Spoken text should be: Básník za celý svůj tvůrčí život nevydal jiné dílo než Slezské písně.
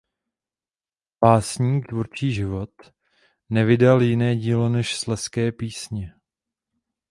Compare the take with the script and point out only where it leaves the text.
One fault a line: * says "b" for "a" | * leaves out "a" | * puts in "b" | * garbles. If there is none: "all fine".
* leaves out "za celý svůj"